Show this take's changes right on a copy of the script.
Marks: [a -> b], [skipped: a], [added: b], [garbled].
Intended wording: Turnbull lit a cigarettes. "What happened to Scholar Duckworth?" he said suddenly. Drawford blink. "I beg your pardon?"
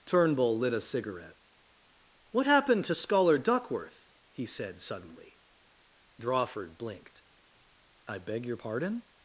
Turnbull lit a [cigarettes. -> cigarette] "What happened to Scholar Duckworth?" he said suddenly. Drawford [blink. -> blinked] "I beg your pardon?"